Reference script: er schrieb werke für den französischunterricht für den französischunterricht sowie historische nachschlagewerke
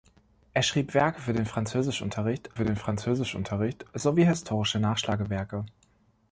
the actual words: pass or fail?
pass